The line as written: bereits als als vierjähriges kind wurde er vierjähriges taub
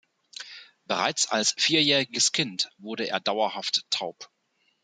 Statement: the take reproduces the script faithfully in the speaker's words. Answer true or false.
false